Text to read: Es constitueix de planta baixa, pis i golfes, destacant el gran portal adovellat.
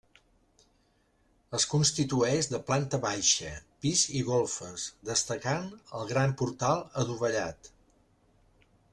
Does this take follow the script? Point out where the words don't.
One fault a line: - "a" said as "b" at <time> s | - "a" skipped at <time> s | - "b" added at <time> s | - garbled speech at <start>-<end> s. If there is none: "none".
none